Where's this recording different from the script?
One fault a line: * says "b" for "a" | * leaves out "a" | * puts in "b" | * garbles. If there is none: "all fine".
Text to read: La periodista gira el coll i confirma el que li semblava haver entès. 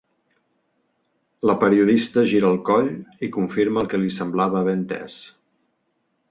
all fine